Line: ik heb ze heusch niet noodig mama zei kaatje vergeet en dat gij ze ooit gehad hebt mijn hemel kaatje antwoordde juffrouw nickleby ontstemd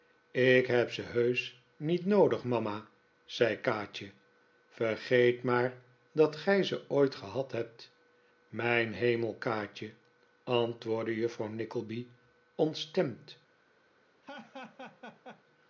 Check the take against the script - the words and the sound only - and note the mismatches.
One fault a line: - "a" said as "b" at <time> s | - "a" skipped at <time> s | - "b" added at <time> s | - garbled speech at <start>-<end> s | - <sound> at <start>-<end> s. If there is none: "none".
- "en" said as "maar" at 5.4 s
- laugh at 14.2-15.4 s